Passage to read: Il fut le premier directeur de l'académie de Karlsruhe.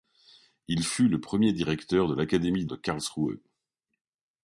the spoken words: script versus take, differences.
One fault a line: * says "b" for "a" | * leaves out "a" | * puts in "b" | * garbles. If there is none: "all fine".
all fine